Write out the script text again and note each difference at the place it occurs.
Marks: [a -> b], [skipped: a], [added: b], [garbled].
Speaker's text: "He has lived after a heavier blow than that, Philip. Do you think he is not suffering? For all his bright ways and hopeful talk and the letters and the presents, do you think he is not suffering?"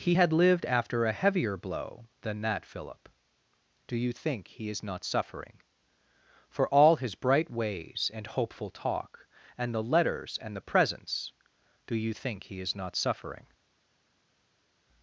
"He [has -> had] lived after a heavier blow than that, Philip. Do you think he is not suffering? For all his bright ways and hopeful talk and the letters and the presents, do you think he is not suffering?"